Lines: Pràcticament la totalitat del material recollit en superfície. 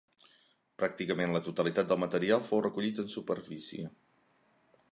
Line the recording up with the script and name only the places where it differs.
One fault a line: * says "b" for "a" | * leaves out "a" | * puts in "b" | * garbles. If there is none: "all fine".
* puts in "fou"